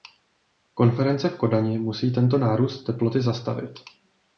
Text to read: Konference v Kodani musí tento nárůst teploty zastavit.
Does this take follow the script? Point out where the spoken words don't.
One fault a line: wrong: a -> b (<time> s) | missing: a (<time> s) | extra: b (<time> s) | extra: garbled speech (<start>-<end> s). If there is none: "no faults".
no faults